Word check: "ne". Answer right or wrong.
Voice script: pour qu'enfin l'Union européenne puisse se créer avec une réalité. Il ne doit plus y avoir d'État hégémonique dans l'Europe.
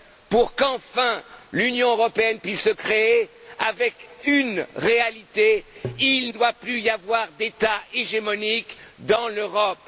wrong